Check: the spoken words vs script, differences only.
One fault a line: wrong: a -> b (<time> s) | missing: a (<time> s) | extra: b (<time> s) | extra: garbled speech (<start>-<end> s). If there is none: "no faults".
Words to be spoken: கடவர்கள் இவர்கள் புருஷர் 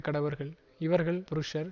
no faults